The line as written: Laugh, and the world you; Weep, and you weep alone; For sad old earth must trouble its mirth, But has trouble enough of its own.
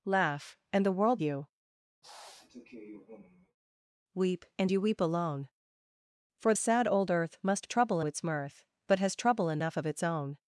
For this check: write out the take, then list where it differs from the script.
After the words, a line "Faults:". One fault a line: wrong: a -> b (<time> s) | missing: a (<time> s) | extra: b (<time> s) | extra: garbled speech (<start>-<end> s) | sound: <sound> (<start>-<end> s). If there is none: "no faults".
Laugh, and the world you; Weep, and you weep alone; For sad old earth must trouble its mirth, But has trouble enough of its own.
Faults:
sound: sniff (2.0-3.6 s)